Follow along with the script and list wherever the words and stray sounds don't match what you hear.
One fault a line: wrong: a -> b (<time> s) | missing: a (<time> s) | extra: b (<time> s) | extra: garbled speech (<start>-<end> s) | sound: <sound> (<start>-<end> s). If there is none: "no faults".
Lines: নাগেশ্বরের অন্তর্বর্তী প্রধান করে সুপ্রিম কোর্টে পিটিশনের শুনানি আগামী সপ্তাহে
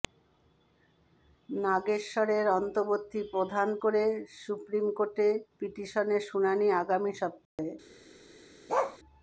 sound: dropout (7.5-7.6 s)
sound: bark (8.7-9.0 s)